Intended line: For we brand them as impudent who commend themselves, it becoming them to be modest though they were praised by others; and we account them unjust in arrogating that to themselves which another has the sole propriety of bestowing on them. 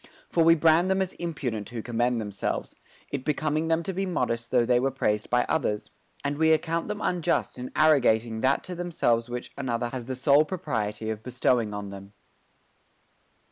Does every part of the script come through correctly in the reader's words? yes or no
yes